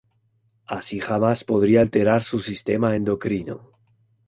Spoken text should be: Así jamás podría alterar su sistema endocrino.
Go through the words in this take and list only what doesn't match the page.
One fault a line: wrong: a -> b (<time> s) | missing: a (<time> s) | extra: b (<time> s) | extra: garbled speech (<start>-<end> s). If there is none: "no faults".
no faults